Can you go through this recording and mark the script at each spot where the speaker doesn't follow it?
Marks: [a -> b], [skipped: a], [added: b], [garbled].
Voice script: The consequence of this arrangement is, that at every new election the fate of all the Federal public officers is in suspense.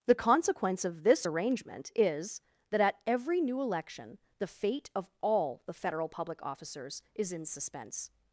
The consequence of this arrangement is, that at every new election the fate of all the Federal public officers is in suspense.